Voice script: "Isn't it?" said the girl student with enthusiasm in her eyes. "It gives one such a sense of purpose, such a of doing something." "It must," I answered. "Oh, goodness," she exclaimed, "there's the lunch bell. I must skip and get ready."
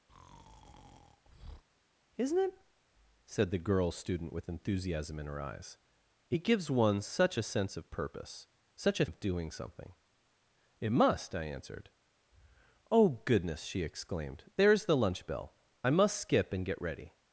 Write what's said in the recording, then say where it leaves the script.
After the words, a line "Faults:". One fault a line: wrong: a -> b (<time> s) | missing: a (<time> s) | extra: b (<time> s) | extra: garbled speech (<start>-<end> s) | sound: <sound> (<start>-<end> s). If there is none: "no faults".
"Isn't it?" said the girl student with enthusiasm in her eyes. "It gives one such a sense of purpose, such a of doing something." "It must," I answered. "Oh, goodness," she exclaimed, "there's the lunch bell. I must skip and get ready."
Faults:
sound: breath (0.1-1.6 s)